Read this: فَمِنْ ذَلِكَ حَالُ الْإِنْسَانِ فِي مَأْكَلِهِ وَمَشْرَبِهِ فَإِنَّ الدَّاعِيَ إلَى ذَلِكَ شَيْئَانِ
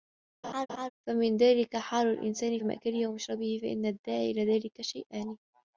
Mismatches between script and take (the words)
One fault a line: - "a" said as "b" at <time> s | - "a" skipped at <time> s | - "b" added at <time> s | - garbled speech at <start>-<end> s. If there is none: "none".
- "فِي" skipped at 2.6 s